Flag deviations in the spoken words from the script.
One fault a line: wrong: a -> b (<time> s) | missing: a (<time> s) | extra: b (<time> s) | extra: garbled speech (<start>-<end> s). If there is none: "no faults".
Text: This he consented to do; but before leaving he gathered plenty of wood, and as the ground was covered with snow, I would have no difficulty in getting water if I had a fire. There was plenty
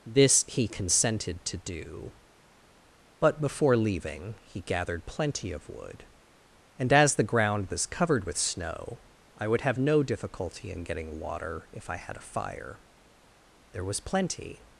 no faults